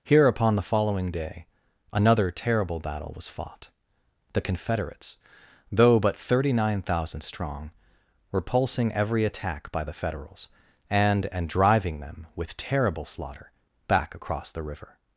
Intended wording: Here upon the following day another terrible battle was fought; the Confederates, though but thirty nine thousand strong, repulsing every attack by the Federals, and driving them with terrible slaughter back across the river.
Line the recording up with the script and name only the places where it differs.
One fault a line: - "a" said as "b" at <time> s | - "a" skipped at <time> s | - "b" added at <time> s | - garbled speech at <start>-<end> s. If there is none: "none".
- "and" added at 11.3 s